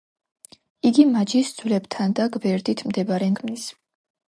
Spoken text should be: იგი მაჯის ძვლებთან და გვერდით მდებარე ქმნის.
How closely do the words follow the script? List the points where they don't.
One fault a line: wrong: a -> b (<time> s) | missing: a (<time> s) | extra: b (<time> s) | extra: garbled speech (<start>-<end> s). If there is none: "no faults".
no faults